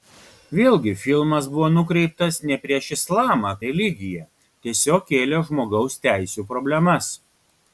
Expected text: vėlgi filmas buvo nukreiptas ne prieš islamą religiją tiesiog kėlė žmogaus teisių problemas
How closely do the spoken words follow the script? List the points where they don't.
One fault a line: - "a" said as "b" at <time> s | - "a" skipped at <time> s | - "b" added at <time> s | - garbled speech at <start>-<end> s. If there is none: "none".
none